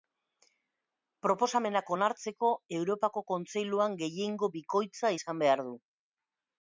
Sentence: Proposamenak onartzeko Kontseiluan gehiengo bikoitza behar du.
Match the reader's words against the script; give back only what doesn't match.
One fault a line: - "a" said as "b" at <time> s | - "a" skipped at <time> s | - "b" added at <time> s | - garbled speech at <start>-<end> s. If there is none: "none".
- "Europako" added at 2.8 s
- "izan" added at 5.2 s